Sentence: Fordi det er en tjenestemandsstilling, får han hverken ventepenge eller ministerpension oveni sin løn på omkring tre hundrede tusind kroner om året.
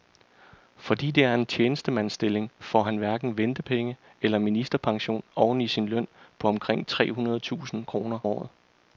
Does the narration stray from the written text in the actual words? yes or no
yes